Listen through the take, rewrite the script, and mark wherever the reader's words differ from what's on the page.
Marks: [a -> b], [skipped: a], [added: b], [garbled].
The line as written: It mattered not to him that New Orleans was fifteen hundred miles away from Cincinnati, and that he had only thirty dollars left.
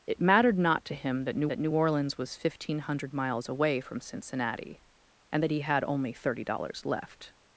It mattered not to him that New [added: that New] Orleans was fifteen hundred miles away from Cincinnati, and that he had only thirty dollars left.